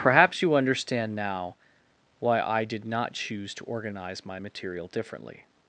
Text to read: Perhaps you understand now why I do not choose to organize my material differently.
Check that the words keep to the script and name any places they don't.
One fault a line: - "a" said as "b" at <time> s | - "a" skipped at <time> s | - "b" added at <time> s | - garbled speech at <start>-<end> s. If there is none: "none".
- "do" said as "did" at 2.6 s